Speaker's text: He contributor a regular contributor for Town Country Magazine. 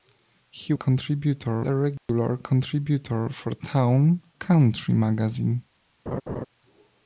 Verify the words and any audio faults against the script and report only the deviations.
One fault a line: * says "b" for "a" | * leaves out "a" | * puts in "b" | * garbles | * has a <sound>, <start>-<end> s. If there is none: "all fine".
* has a dropout, 2.0-2.1 s
* has a laugh, 6.1-6.5 s